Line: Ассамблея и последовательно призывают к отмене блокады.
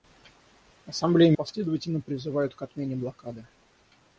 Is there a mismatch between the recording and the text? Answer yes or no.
no